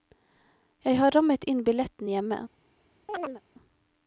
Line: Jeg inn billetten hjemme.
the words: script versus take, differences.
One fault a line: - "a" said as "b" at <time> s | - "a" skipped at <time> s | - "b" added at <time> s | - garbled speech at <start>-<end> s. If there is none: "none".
- "har rammet" added at 1.0 s